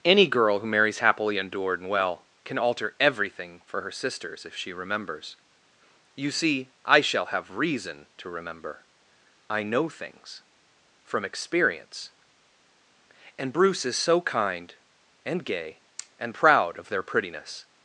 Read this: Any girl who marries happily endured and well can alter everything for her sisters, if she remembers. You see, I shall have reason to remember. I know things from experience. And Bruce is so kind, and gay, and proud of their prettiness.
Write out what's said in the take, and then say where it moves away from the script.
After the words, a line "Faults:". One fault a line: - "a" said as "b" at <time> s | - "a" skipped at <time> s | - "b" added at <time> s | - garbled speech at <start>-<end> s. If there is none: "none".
Any girl who marries happily endured and well can alter everything for her sisters, if she remembers. You see, I shall have reason to remember. I know things from experience. And Bruce is so kind, and gay, and proud of their prettiness.
Faults:
none